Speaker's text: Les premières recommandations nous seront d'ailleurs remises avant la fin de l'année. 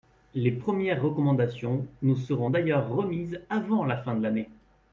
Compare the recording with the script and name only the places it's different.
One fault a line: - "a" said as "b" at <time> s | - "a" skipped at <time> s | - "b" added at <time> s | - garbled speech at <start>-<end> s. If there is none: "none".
none